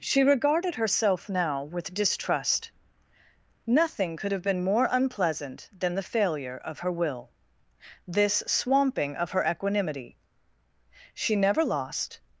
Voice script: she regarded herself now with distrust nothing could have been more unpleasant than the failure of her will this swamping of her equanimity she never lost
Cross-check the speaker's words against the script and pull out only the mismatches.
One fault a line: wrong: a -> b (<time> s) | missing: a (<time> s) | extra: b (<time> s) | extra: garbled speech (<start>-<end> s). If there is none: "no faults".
no faults